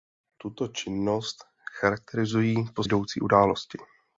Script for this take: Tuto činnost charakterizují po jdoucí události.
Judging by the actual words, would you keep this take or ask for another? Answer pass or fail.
pass